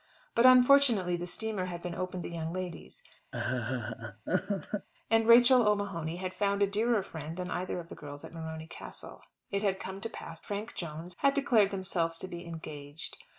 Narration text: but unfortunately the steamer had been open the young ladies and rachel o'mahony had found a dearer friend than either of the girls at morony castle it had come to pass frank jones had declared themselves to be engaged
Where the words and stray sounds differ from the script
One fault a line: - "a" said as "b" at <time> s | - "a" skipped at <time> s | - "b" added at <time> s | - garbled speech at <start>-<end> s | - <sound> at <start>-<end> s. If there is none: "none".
- laugh at 3.3-4.9 s